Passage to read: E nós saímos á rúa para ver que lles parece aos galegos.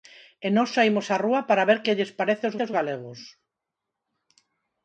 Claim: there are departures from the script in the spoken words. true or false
true